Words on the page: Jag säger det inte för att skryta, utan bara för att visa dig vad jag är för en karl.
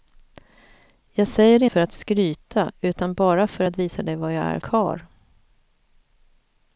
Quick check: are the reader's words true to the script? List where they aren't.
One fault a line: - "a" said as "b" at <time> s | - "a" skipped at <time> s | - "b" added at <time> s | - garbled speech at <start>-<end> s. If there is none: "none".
- "inte" skipped at 1.6 s
- "för en" skipped at 4.6 s